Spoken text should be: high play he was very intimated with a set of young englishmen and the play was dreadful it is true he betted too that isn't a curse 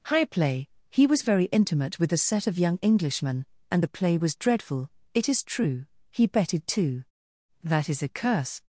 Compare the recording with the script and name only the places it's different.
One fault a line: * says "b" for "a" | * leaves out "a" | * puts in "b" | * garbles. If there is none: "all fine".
* says "intimate" for "intimated"
* says "is" for "isn't"